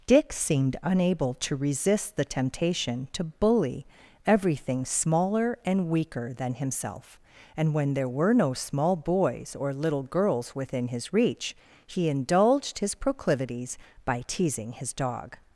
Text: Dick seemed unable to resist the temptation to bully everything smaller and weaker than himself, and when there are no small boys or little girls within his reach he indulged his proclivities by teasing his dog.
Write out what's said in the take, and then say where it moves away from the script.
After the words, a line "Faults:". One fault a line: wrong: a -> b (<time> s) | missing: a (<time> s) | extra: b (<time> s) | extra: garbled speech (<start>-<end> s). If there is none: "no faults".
Dick seemed unable to resist the temptation to bully everything smaller and weaker than himself, and when there were no small boys or little girls within his reach he indulged his proclivities by teasing his dog.
Faults:
wrong: are -> were (8.1 s)